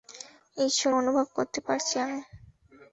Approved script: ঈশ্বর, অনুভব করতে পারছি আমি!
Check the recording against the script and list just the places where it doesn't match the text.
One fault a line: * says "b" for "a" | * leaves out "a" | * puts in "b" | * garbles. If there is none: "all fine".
all fine